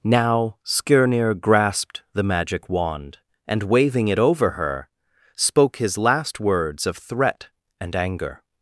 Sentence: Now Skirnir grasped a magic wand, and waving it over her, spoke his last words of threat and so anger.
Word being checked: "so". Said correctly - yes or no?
no